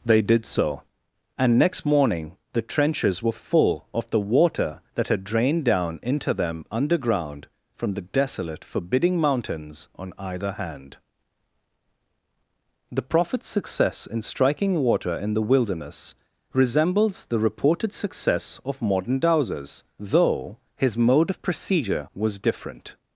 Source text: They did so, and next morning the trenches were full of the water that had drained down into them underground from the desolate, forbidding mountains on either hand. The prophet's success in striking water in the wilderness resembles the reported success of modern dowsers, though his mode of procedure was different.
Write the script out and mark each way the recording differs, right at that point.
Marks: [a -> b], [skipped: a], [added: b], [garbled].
They did so, and next morning the trenches were full of the water that had drained down into them underground from the desolate, forbidding mountains on either hand. The prophet's success in striking water in the wilderness resembles the reported success of modern dowsers, though his mode of procedure was different.